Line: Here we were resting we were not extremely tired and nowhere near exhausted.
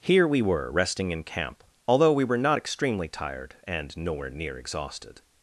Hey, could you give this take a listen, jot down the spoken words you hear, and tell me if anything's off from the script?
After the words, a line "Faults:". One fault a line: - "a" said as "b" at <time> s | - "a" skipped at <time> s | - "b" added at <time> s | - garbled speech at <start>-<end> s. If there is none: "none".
Here we were resting in camp, although we were not extremely tired and nowhere near exhausted.
Faults:
- "in camp although" added at 1.1 s